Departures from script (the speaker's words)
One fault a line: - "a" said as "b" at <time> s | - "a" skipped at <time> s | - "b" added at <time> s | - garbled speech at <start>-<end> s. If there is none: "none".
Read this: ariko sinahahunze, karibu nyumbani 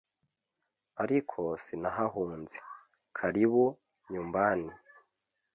none